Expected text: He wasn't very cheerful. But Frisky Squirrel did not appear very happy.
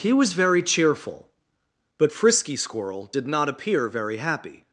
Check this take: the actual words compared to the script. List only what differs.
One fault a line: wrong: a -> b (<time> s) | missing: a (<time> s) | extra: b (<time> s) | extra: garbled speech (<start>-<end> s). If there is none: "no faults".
wrong: wasn't -> was (0.1 s)